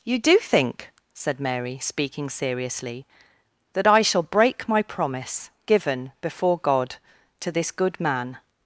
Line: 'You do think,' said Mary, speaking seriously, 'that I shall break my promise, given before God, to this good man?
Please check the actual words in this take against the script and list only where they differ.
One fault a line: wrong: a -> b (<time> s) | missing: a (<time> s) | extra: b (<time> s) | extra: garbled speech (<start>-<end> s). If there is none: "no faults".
no faults